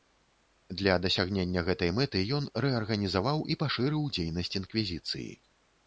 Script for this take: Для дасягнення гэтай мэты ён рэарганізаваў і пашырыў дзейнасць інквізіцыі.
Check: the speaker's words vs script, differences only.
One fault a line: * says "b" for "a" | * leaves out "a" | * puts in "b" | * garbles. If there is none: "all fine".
all fine